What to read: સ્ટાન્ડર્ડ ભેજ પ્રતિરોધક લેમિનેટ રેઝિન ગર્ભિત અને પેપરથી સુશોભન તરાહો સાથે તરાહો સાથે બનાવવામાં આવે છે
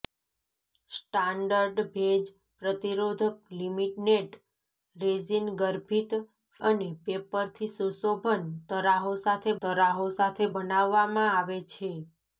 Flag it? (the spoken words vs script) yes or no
no